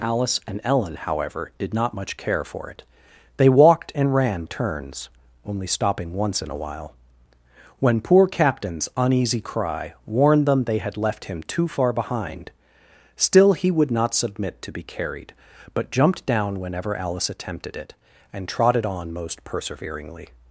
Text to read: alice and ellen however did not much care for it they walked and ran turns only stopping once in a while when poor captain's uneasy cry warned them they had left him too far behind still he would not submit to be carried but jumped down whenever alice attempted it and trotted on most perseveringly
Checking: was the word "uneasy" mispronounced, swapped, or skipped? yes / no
no